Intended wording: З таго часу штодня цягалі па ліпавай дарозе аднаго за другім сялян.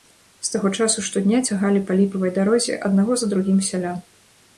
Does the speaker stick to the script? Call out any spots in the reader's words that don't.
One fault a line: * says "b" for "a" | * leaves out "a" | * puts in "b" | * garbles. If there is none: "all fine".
all fine